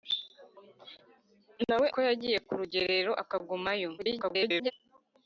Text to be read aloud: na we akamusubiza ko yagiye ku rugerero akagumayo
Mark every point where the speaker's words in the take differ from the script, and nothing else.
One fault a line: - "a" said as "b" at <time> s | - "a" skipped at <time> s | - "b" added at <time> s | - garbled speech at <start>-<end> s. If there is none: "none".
- "akamusubiza" skipped at 1.9 s
- garbled speech at 4.0-4.7 s